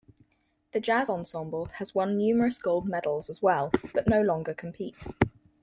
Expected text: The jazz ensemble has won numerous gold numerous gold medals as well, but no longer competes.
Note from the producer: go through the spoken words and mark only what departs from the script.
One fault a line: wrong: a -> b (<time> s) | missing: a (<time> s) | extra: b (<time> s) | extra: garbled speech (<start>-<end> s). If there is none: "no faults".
missing: numerous gold (2.9 s)